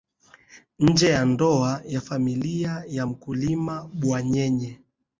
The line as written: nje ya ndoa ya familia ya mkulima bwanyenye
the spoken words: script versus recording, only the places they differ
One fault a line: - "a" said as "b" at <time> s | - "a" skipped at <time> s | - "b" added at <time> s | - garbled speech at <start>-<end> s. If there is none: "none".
none